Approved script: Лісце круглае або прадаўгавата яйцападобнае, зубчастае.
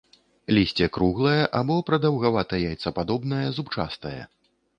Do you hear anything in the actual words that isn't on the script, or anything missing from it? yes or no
no